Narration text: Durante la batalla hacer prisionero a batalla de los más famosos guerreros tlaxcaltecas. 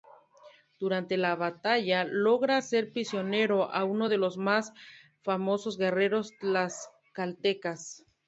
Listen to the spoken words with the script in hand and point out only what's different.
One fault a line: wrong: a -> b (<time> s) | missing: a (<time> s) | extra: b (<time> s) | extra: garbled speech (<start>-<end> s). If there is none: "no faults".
extra: logra (2.0 s)
wrong: batalla -> uno (3.8 s)